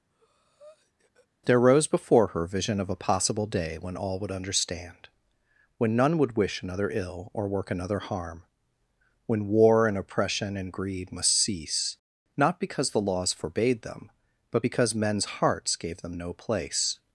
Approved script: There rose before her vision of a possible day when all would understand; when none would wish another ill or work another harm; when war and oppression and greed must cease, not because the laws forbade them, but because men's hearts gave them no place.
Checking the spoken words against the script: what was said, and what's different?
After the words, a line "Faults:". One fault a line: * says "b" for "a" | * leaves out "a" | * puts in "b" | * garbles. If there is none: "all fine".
There rose before her vision of a possible day when all would understand; when none would wish another ill or work another harm; when war and oppression and greed must cease, not because the laws forbade them, but because men's hearts gave them no place.
Faults:
all fine